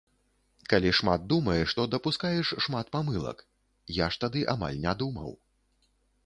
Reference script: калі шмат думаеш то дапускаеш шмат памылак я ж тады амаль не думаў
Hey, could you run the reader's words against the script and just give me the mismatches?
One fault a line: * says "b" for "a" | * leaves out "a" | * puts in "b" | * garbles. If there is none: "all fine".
all fine